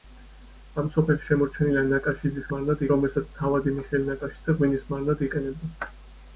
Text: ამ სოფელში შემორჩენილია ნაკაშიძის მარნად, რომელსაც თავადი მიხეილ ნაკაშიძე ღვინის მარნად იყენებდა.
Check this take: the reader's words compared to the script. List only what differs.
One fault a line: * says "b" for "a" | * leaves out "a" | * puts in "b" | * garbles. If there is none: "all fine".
all fine